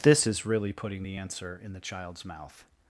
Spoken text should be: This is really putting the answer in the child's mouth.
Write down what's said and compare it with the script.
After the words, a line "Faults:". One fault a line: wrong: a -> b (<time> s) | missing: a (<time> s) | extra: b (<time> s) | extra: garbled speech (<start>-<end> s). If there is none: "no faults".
This is really putting the answer in the child's mouth.
Faults:
no faults